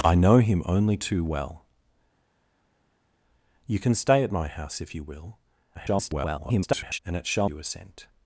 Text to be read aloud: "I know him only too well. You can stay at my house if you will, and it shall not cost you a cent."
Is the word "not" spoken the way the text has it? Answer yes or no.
no